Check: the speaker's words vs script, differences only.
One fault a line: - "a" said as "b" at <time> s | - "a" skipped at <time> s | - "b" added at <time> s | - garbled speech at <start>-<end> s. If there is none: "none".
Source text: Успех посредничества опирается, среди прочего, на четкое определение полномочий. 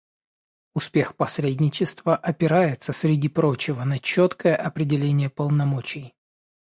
none